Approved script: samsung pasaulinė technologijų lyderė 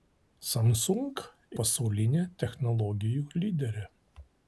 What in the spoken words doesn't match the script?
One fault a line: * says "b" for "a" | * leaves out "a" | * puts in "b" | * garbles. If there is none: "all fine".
all fine